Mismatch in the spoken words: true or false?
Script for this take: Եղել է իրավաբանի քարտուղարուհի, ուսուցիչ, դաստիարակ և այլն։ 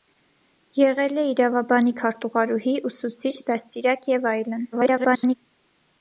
true